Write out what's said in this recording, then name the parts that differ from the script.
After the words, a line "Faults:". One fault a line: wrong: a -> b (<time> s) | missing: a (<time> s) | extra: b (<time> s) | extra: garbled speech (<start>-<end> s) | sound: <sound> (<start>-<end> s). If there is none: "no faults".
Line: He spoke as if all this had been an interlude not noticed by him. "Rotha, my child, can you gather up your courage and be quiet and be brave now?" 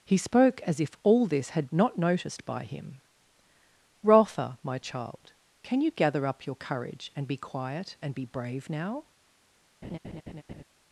He spoke as if all this had not noticed by him. "Rotha, my child, can you gather up your courage and be quiet and be brave now?"
Faults:
missing: been an interlude (1.7 s)
sound: laugh (9.8-10.6 s)